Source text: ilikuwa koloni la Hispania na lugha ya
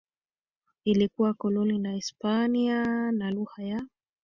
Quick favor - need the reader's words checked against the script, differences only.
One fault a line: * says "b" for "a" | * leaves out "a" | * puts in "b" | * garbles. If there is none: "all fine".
all fine